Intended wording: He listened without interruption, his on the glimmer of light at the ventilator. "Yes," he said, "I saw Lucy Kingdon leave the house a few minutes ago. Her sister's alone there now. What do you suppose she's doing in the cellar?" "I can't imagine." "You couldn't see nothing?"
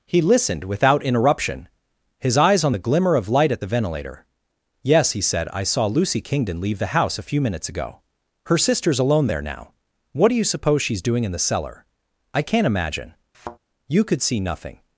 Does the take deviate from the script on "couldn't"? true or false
true